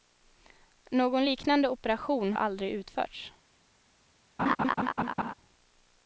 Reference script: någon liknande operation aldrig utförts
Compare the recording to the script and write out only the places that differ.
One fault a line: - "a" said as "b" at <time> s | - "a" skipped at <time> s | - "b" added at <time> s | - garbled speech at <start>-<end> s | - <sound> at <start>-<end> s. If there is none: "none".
- laugh at 4.4-5.3 s